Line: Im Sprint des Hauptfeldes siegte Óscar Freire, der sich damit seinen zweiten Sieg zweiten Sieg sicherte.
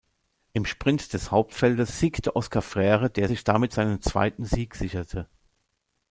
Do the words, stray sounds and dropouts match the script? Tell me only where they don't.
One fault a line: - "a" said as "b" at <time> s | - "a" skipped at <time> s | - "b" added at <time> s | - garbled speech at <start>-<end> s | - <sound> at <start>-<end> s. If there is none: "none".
- "zweiten Sieg" skipped at 4.8 s